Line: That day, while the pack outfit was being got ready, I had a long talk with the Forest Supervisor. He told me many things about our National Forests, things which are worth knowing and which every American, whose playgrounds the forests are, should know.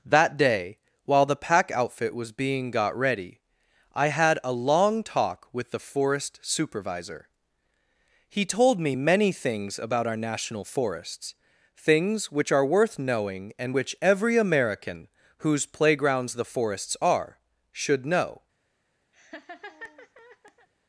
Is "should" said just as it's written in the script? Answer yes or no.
yes